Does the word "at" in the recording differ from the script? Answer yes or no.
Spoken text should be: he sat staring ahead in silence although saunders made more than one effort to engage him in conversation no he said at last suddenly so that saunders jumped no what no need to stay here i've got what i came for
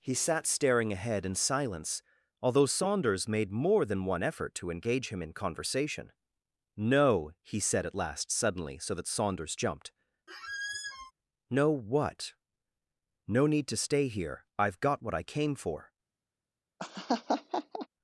no